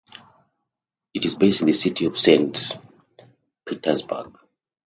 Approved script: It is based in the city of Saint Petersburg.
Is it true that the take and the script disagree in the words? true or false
false